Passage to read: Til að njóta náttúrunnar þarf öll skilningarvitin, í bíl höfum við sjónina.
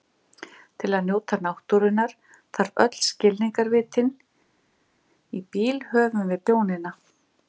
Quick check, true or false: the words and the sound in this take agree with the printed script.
true